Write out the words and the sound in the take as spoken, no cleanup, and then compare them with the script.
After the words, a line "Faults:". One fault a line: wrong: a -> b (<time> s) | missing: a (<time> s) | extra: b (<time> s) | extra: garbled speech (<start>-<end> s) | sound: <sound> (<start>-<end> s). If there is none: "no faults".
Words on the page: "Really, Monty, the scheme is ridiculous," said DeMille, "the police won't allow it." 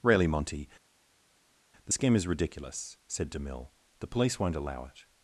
"Really, Monty, the scheme is ridiculous," said DeMille, "the police won't allow it."
Faults:
no faults